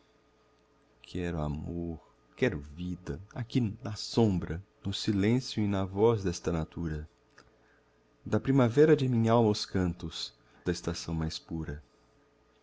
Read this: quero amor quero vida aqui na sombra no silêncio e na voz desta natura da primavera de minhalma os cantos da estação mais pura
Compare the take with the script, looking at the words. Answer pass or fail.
pass